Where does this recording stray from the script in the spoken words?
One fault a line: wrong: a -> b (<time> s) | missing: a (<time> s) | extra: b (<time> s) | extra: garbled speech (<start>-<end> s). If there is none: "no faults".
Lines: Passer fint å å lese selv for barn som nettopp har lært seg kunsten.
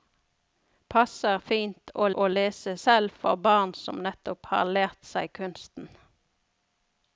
no faults